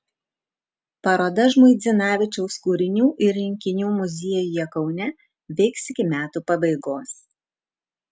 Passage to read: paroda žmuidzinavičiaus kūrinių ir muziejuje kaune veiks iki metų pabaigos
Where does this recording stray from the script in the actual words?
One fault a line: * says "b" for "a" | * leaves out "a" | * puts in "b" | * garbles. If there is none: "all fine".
* puts in "rinkinių"